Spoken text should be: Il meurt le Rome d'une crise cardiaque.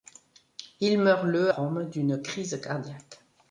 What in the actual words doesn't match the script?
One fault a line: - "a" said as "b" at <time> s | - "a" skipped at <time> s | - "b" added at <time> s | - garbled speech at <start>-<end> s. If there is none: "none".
none